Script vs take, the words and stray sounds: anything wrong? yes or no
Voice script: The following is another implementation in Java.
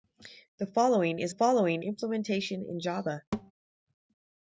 yes